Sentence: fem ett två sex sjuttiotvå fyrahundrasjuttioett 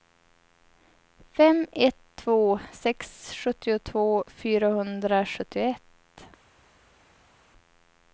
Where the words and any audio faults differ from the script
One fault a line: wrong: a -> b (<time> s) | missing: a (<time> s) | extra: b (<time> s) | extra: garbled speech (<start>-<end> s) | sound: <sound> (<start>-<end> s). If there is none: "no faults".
no faults